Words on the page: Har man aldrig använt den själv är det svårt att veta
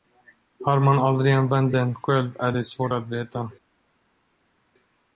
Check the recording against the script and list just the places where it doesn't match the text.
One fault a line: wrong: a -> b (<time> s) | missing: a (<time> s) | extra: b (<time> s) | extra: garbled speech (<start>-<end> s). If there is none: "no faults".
no faults